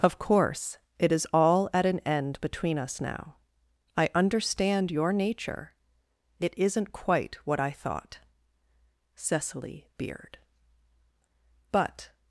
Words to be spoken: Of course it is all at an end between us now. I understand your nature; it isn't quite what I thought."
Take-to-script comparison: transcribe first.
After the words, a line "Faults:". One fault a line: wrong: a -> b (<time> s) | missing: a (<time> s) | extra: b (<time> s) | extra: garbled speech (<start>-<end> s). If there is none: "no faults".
Of course it is all at an end between us now. I understand your nature; it isn't quite what I thought." Cecily beard, but
Faults:
extra: Cecily beard but (9.1 s)